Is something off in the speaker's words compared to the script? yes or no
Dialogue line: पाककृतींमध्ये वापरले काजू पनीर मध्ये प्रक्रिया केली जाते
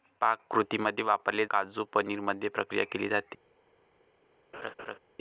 no